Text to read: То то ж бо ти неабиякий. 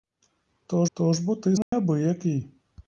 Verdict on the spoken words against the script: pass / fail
pass